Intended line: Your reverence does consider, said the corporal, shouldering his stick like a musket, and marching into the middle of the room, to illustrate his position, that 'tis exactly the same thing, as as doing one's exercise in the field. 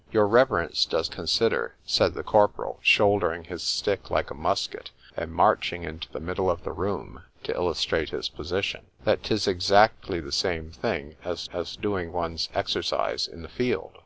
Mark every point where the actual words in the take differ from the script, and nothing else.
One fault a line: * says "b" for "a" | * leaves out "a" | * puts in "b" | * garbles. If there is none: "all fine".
all fine